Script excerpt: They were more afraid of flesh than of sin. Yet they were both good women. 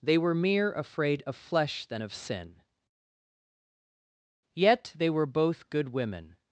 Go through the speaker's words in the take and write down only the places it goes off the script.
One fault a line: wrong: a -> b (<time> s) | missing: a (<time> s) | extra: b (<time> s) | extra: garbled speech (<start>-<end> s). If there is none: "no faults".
wrong: more -> mere (0.3 s)